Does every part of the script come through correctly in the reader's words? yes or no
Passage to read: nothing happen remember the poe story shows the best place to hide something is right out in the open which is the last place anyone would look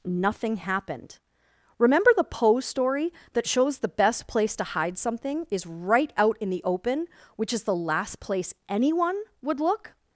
no